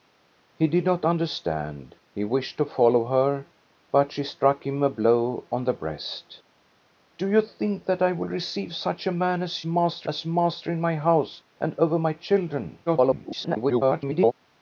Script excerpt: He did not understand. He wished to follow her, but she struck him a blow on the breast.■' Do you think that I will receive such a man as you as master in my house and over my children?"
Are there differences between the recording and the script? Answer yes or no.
yes